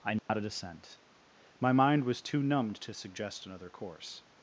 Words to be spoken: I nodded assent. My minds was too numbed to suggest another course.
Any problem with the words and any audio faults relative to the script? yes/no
yes